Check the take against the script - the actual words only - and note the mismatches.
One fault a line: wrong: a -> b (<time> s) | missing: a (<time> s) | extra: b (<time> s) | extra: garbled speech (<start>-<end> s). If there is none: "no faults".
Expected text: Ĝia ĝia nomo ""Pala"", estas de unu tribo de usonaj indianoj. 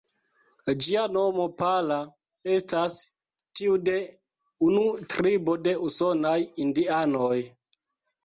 missing: ĝia (1.0 s)
extra: tiu (3.6 s)